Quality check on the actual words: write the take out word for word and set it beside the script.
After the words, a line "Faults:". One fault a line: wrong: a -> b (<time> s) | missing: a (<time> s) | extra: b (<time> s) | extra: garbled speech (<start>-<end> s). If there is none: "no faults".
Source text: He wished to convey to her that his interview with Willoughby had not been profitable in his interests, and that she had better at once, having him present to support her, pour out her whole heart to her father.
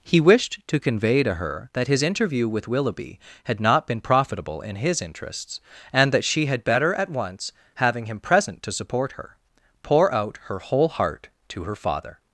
He wished to convey to her that his interview with Willoughby had not been profitable in his interests, and that she had better at once, having him present to support her, pour out her whole heart to her father.
Faults:
no faults